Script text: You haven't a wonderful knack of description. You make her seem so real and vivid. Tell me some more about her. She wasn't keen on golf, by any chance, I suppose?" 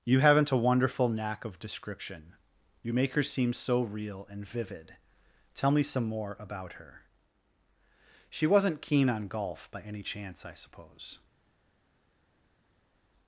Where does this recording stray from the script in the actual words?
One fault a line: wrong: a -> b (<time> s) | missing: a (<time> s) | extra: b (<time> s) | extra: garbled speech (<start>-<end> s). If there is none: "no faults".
no faults